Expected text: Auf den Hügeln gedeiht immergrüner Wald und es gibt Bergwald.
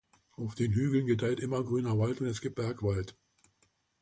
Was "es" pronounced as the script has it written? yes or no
yes